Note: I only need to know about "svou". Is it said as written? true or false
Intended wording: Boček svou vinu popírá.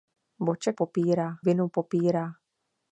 false